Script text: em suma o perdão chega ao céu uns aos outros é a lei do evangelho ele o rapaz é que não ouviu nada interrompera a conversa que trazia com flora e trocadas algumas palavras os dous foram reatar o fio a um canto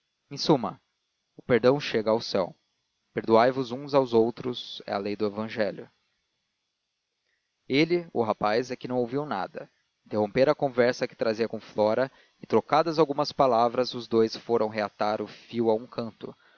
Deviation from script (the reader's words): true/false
true